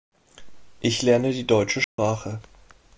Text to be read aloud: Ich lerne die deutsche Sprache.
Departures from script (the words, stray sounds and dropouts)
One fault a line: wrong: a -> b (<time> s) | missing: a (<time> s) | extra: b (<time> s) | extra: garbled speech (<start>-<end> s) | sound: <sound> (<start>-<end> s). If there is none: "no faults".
sound: dropout (1.8-2.0 s)